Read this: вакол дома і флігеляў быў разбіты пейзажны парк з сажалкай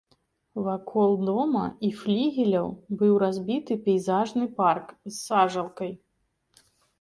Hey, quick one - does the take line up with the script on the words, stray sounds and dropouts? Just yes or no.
yes